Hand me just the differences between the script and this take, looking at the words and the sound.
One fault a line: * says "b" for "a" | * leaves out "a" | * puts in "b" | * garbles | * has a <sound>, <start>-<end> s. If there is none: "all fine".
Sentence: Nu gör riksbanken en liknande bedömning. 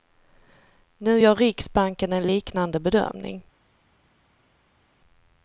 all fine